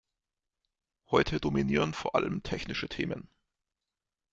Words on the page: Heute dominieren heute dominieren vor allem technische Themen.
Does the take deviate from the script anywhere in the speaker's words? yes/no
yes